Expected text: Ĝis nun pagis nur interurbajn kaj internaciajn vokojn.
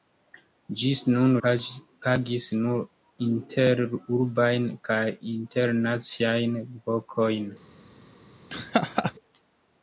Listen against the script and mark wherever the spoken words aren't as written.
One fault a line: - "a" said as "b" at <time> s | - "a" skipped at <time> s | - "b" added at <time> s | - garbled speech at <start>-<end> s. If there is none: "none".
none